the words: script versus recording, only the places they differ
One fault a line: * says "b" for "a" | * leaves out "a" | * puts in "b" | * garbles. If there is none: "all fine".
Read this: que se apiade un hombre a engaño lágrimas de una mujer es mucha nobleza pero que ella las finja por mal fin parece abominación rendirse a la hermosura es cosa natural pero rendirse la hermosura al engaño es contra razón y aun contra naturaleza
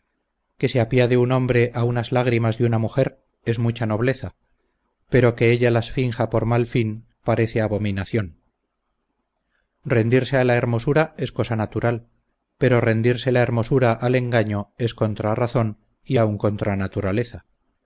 * says "unas" for "engaño"